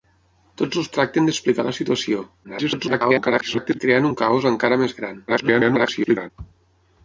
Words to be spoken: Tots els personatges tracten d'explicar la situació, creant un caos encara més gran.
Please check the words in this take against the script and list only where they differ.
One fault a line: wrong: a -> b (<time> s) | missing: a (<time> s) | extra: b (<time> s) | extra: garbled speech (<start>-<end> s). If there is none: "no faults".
missing: personatges (0.9 s)
extra: garbled speech (2.4-3.8 s)
extra: garbled speech (5.3-6.3 s)